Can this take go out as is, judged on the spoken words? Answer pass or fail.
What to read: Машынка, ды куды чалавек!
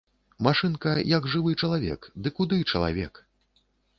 fail